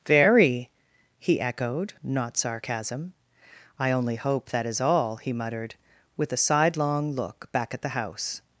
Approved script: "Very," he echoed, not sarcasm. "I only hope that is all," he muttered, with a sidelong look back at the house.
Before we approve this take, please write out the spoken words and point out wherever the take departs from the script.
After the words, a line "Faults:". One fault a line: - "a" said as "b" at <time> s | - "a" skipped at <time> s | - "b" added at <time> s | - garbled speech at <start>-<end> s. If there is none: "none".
"Very," he echoed, not sarcasm. "I only hope that is all," he muttered, with a sidelong look back at the house.
Faults:
none